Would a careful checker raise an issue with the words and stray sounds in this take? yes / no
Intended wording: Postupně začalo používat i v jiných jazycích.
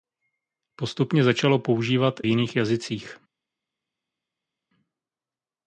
yes